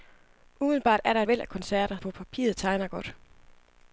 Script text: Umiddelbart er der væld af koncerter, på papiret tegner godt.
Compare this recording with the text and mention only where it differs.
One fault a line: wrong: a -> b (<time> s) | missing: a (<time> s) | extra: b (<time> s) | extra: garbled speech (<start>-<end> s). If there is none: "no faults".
no faults